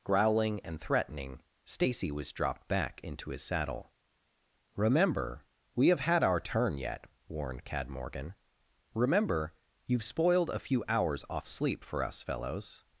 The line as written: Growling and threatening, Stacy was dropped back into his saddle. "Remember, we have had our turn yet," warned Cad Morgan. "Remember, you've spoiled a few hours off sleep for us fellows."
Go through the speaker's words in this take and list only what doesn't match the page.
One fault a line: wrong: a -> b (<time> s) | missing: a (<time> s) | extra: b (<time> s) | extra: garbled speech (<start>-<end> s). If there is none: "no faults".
no faults